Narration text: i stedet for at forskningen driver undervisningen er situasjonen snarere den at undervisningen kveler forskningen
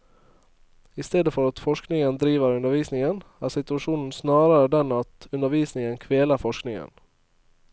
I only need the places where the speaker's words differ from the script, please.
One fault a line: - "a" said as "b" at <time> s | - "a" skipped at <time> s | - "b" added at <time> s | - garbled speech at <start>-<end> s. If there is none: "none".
none